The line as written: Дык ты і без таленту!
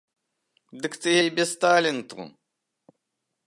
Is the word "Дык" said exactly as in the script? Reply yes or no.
yes